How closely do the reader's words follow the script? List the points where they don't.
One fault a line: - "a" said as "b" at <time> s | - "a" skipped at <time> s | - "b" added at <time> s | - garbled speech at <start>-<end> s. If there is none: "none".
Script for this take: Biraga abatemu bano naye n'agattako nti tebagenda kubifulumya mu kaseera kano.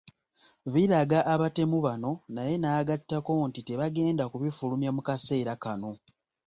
none